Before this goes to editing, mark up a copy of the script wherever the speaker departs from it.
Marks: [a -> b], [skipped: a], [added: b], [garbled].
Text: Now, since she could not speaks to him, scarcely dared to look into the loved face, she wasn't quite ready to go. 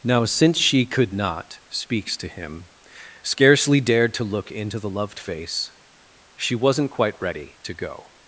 Now, since she could not speaks to him, scarcely dared to look into the loved face, she wasn't quite ready to go.